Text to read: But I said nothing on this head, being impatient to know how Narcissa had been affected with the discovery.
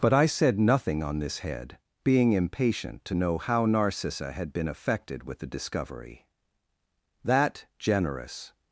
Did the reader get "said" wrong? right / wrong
right